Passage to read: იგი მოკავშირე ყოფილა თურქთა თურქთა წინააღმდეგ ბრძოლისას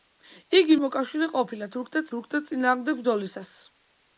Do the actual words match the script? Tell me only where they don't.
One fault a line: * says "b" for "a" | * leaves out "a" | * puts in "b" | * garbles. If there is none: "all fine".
all fine